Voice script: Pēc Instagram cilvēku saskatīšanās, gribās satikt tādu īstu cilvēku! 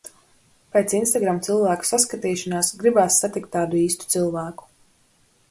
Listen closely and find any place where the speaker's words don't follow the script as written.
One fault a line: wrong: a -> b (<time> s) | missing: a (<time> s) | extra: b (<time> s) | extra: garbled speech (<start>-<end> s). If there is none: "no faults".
no faults